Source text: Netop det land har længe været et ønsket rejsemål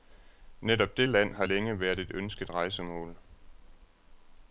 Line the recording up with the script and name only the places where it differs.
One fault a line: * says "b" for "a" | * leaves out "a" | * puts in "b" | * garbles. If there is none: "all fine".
all fine